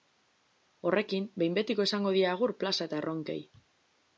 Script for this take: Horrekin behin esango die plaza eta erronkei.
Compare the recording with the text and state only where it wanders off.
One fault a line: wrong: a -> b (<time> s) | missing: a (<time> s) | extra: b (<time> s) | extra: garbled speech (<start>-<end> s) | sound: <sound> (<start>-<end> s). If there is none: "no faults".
extra: betiko (1.6 s)
extra: agur (2.3 s)